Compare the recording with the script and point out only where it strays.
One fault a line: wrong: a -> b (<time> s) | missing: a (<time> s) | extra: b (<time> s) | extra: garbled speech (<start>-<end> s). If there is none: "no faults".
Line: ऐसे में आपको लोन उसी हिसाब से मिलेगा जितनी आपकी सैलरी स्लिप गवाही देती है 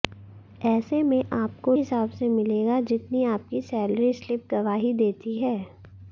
missing: लोन उसी (1.8 s)